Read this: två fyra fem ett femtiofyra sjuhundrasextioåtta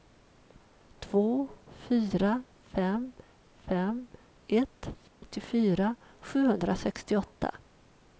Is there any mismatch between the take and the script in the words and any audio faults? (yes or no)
yes